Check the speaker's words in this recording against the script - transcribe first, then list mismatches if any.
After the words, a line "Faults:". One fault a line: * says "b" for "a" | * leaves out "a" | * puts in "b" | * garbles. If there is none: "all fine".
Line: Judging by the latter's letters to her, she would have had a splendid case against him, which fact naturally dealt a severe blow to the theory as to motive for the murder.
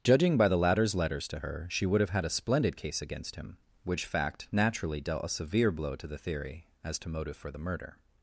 Judging by the latter's letters to her, she would have had a splendid case against him, which fact naturally dealt a severe blow to the theory as to motive for the murder.
Faults:
all fine